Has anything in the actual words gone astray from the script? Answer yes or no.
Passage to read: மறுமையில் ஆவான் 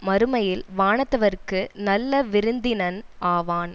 yes